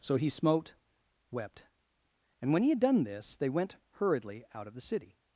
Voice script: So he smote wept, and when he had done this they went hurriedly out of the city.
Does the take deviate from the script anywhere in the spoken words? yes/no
no